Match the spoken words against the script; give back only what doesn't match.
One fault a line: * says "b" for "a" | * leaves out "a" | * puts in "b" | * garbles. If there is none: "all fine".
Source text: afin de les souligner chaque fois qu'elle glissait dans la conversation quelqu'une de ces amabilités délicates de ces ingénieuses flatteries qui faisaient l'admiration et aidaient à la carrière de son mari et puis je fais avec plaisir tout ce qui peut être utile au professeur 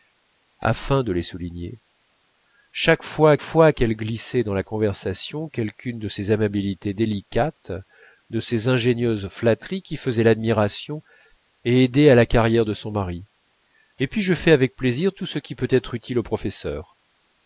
* puts in "fois"